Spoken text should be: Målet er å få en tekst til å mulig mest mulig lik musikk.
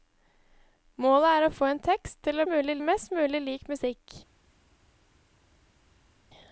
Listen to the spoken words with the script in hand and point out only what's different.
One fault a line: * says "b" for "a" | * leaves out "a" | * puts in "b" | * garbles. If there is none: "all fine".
all fine